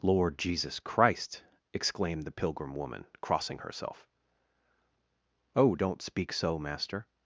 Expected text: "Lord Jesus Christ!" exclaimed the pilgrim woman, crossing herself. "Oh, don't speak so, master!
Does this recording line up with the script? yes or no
yes